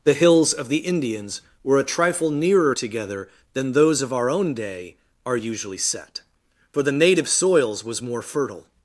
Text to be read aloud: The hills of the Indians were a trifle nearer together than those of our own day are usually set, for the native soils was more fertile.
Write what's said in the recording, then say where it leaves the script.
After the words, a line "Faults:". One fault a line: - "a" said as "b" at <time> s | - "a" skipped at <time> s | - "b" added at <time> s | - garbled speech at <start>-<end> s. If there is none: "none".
The hills of the Indians were a trifle nearer together than those of our own day are usually set, for the native soils was more fertile.
Faults:
none